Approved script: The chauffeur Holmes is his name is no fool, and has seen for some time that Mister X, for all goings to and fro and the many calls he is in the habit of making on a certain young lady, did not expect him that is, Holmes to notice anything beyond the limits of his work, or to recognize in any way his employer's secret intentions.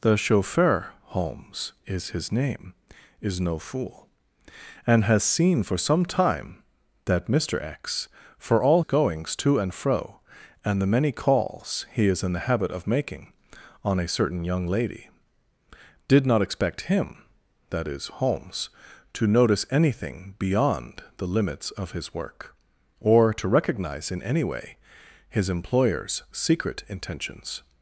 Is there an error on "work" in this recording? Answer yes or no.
no